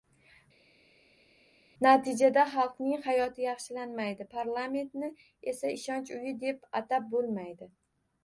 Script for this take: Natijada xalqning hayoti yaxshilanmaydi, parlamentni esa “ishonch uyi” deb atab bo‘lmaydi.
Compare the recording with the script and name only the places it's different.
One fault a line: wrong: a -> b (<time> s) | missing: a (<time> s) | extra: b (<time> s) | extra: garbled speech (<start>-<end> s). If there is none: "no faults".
no faults